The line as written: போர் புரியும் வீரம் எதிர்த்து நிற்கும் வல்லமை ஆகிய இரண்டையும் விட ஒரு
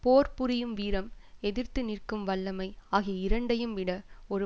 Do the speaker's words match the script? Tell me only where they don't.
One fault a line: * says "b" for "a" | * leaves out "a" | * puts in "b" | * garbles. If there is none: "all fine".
all fine